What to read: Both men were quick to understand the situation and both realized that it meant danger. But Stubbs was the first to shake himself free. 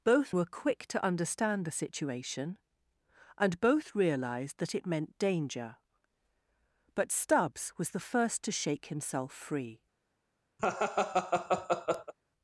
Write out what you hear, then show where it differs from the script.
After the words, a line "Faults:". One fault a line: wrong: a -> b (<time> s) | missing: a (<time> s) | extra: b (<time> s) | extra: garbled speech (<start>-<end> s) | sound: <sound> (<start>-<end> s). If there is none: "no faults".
Both were quick to understand the situation and both realized that it meant danger. But Stubbs was the first to shake himself free.
Faults:
missing: men (0.3 s)
sound: laugh (10.6-12.1 s)